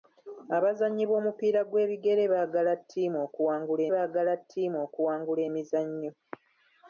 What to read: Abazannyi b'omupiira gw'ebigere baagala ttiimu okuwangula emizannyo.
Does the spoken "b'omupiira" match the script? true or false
true